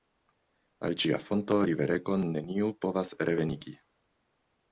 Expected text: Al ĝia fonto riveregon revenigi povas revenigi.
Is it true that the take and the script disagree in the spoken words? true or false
true